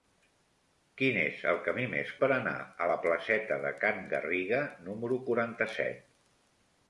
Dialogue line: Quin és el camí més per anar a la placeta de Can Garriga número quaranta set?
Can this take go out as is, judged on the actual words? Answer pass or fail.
pass